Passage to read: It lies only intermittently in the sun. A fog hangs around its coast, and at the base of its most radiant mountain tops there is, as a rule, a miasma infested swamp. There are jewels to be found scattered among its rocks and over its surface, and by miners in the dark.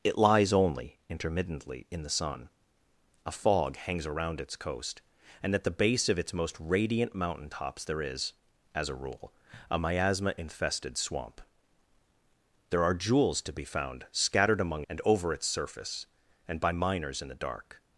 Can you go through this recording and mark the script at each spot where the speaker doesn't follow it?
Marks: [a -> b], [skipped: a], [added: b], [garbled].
It lies only intermittently in the sun. A fog hangs around its coast, and at the base of its most radiant mountain tops there is, as a rule, a miasma infested swamp. There are jewels to be found scattered among [skipped: its rocks] and over its surface, and by miners in the dark.